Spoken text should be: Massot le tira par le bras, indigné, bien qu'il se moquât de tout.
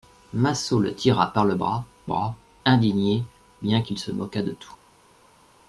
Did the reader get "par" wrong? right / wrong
right